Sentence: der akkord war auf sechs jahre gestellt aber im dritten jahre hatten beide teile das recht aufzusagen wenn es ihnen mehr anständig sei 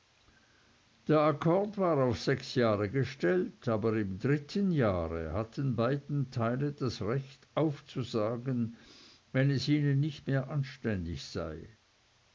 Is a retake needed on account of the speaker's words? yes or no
yes